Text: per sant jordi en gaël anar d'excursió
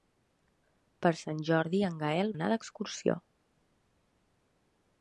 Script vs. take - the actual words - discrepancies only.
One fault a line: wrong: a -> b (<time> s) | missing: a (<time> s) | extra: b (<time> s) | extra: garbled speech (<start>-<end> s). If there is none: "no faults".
no faults